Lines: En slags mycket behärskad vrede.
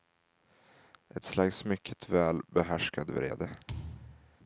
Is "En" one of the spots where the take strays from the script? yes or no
yes